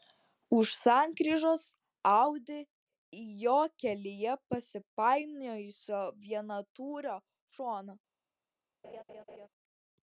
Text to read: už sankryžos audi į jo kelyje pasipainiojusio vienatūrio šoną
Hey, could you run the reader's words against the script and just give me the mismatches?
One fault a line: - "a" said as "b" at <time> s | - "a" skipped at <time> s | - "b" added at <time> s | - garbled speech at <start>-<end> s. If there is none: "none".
none